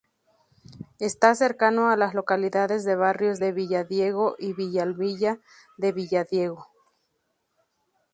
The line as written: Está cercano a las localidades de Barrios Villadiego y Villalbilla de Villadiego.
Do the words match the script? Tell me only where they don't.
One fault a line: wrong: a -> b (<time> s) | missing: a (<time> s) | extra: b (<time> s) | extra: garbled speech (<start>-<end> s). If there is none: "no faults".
extra: de (3.4 s)